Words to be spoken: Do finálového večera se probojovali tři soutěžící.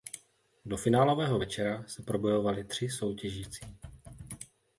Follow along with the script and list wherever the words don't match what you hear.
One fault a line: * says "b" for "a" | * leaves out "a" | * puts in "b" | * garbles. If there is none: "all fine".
all fine